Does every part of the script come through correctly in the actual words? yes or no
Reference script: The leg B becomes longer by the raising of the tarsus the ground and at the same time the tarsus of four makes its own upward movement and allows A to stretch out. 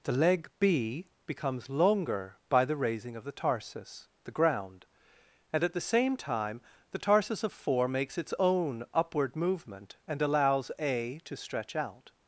yes